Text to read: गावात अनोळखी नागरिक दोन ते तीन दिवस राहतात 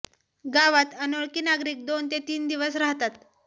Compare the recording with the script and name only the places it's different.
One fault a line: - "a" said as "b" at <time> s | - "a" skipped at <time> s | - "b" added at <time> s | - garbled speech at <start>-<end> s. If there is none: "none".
none